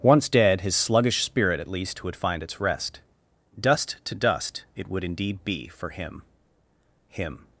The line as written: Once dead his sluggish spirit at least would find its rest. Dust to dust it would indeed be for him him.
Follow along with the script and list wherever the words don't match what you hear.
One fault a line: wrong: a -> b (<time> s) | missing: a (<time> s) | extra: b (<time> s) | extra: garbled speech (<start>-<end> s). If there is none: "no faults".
no faults